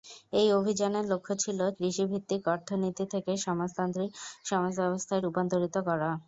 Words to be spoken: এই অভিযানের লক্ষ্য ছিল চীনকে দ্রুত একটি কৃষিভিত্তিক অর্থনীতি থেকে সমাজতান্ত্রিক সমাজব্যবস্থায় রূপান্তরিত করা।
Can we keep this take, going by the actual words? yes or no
no